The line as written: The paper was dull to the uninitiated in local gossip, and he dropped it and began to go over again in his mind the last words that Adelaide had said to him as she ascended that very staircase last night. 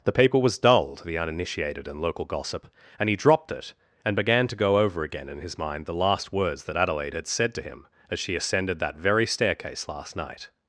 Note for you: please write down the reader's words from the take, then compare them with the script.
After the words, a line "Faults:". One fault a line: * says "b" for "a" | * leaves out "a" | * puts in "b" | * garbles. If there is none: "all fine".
The paper was dull to the uninitiated in local gossip, and he dropped it and began to go over again in his mind the last words that Adelaide had said to him as she ascended that very staircase last night.
Faults:
all fine